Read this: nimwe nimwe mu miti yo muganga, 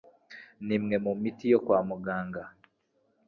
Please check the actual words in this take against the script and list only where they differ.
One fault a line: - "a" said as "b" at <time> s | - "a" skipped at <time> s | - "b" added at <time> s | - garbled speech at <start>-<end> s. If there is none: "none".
- "nimwe" skipped at 0.9 s
- "kwa" added at 1.6 s